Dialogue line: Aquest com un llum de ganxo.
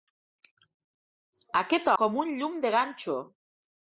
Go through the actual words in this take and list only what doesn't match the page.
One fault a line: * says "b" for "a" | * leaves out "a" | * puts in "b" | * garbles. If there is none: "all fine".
all fine